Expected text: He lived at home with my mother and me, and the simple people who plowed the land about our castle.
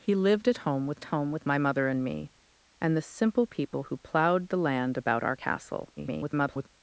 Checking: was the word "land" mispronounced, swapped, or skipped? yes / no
no